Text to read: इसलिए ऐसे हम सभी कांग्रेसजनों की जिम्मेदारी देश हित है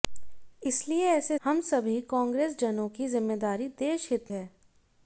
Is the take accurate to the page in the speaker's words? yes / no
yes